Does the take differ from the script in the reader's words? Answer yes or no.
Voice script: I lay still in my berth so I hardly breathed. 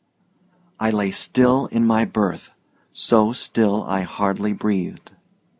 yes